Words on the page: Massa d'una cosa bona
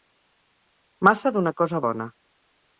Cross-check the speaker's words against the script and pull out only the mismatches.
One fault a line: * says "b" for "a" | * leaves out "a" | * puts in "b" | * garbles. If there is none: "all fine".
all fine